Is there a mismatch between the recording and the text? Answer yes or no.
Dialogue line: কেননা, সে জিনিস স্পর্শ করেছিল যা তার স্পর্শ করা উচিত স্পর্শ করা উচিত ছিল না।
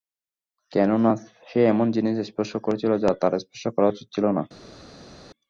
yes